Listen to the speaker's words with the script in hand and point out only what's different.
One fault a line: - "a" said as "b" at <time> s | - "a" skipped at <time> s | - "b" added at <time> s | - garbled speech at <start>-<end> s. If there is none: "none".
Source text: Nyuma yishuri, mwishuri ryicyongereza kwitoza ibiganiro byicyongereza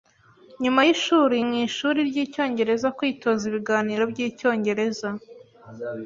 none